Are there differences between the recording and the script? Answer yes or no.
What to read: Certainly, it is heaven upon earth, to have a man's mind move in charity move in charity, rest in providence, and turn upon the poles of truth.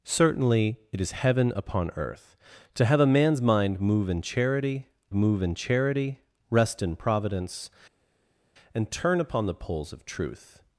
no